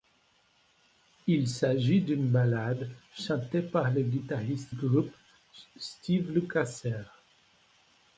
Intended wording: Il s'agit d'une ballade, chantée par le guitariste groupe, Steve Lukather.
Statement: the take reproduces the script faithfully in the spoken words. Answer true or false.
true